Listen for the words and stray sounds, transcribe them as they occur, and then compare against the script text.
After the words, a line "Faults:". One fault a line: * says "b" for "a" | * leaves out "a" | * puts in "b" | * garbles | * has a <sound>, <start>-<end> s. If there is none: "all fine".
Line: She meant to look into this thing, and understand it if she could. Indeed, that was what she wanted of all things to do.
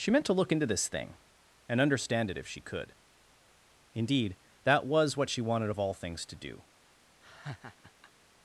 She meant to look into this thing, and understand it if she could. Indeed, that was what she wanted of all things to do.
Faults:
* has a laugh, 7.2-8.1 s